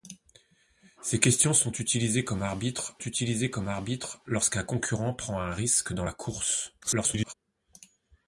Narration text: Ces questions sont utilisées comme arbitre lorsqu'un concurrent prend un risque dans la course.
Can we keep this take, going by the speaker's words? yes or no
no